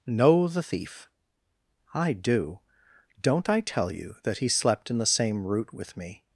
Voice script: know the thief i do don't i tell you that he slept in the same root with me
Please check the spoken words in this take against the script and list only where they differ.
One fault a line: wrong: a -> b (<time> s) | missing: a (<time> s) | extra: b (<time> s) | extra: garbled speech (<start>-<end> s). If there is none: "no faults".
no faults